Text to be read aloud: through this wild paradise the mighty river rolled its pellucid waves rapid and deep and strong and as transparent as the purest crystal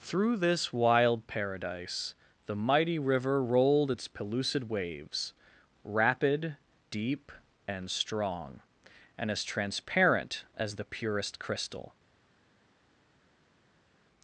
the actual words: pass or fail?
fail